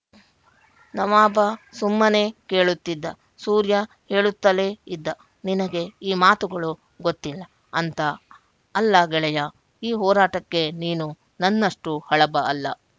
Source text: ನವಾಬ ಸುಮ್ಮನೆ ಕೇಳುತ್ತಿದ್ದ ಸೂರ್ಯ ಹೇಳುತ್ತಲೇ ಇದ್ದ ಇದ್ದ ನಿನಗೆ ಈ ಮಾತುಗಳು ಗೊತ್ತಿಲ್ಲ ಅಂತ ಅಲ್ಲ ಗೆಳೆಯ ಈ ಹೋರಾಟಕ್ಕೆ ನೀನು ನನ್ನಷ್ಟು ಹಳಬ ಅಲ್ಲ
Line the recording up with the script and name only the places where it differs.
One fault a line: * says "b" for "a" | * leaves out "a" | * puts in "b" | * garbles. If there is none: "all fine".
* leaves out "ಇದ್ದ"